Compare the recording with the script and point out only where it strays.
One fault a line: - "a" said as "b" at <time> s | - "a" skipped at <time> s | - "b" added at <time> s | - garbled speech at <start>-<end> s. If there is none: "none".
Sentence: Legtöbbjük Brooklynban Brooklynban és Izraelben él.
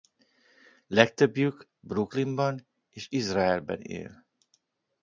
- "Brooklynban" skipped at 2.7 s